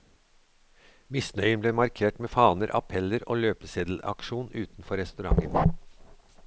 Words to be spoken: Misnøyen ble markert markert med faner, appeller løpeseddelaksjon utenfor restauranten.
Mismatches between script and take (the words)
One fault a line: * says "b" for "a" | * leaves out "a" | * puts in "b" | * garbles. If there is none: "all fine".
* leaves out "markert"
* puts in "og"